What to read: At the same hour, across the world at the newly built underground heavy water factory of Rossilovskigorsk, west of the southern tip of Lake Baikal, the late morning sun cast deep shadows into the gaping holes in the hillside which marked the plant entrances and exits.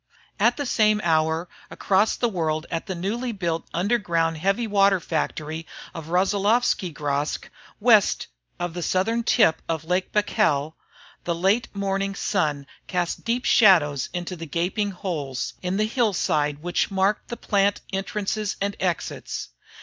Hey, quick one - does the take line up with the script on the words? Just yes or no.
yes